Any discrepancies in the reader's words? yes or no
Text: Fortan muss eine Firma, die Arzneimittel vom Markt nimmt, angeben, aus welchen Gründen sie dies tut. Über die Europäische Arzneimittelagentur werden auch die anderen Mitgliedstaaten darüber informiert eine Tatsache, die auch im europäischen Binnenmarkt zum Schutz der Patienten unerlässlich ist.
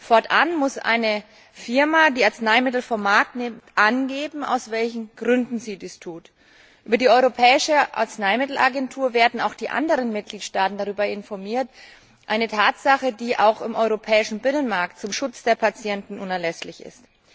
no